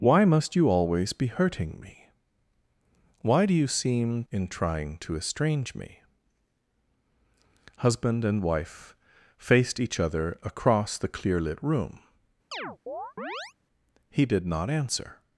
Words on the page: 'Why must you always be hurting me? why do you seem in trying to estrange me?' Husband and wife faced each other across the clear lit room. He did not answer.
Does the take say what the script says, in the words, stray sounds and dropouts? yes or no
no